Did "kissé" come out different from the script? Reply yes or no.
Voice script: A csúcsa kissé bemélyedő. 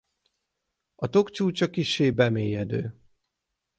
no